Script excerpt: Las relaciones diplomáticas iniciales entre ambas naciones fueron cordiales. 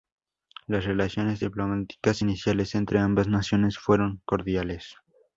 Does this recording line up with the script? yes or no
yes